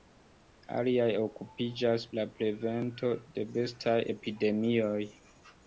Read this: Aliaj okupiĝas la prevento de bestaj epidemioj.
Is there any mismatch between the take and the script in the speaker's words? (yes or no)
no